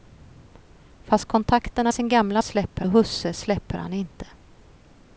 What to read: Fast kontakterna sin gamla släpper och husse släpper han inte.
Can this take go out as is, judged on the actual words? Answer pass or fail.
pass